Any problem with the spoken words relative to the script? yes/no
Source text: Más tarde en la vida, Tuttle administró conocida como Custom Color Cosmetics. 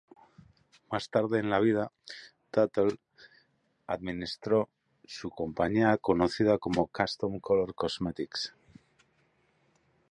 yes